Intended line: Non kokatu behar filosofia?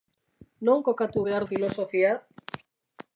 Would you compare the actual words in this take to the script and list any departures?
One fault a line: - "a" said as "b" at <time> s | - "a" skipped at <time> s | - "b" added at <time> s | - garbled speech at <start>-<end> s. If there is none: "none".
none